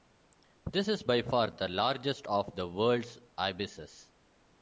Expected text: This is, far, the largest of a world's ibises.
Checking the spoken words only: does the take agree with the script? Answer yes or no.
no